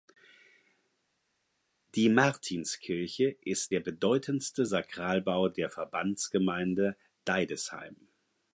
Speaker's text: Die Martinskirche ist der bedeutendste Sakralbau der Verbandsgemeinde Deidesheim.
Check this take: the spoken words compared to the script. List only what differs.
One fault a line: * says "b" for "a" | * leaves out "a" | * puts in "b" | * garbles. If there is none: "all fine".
all fine